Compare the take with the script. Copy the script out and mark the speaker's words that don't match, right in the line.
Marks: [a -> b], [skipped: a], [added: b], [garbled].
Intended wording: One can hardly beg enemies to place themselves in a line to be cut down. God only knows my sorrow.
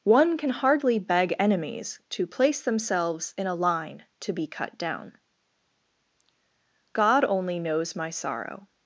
One can hardly beg enemies to place themselves in a line to be cut down. God only knows my sorrow.